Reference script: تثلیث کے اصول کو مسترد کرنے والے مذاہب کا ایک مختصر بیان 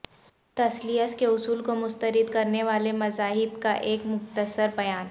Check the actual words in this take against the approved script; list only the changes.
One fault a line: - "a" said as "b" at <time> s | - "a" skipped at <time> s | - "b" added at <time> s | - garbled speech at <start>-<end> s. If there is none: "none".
none